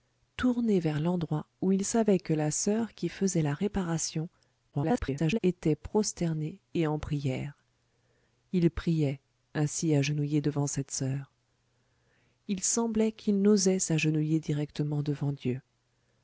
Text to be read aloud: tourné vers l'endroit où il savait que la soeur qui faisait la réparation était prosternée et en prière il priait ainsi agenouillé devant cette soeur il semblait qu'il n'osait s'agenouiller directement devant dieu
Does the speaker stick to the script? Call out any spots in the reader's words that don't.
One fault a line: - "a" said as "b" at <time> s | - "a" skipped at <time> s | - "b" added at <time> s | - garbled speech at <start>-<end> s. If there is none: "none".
- garbled speech at 4.7-5.4 s